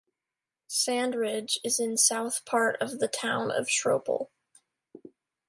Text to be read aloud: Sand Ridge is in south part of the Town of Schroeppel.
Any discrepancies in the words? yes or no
no